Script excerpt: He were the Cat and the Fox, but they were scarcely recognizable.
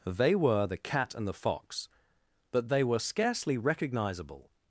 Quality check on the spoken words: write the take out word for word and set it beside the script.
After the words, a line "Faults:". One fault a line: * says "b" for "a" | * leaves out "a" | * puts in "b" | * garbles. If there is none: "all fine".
They were the Cat and the Fox, but they were scarcely recognizable.
Faults:
* says "They" for "He"